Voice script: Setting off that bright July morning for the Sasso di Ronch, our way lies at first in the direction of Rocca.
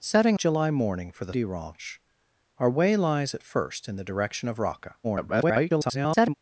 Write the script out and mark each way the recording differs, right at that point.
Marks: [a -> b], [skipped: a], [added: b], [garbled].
Setting [skipped: off that bright] July morning for the [skipped: Sasso] di Ronch, our way lies at first in the direction of Rocca. [garbled]